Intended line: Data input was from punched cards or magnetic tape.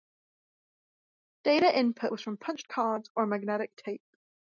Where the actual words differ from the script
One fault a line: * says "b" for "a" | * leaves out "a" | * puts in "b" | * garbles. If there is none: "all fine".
all fine